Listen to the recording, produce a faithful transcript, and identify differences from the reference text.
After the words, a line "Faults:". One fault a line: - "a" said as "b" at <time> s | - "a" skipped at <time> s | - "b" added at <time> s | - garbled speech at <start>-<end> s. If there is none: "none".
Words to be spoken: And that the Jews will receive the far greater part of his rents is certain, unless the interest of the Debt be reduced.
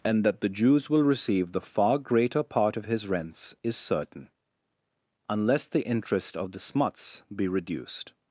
And that the Jews will receive the far greater part of his rents is certain, unless the interest of the Smuts be reduced.
Faults:
- "Debt" said as "Smuts" at 6.6 s